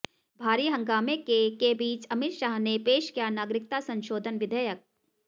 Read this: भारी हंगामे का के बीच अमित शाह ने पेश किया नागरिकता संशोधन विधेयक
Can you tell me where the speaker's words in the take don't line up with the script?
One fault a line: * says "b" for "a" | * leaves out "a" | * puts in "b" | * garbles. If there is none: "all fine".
* says "के" for "का"